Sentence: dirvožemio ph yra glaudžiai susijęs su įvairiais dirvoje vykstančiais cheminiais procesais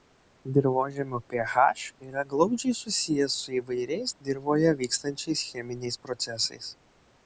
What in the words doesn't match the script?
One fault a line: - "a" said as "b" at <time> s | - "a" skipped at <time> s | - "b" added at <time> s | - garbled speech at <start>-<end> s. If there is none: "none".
none